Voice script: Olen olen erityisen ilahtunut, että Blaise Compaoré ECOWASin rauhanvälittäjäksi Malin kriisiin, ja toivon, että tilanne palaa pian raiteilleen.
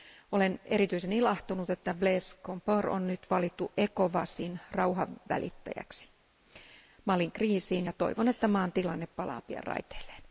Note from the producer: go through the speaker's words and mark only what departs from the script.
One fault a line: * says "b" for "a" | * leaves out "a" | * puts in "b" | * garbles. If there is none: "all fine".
* leaves out "olen"
* puts in "on nyt valittu"
* puts in "maan"